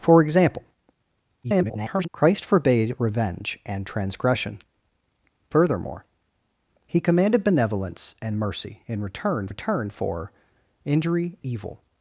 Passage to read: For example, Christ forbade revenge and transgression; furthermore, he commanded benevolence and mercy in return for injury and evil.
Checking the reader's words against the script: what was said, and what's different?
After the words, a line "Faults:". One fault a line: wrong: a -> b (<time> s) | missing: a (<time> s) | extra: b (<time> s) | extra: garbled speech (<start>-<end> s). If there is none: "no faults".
For example, [garbled] Christ forbade revenge and transgression; furthermore, he commanded benevolence and mercy in return return for injury evil.
Faults:
extra: garbled speech (1.4-2.1 s)
extra: return (9.5 s)
missing: and (11.4 s)